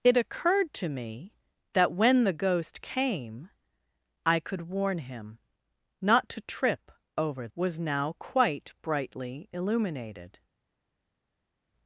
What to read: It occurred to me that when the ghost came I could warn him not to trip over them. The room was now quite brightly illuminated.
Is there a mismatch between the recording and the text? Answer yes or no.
yes